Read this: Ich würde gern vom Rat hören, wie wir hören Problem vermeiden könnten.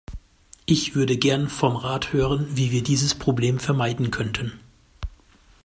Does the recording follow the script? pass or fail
fail